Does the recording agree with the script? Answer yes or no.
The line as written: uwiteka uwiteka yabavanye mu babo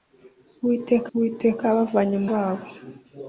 yes